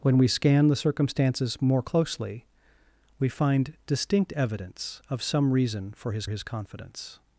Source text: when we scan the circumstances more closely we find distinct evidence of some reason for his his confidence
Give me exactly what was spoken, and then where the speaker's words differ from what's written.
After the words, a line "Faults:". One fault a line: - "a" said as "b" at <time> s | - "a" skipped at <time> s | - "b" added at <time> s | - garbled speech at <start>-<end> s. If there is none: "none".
when we scan the circumstances more closely we find distinct evidence of some reason for his his confidence
Faults:
none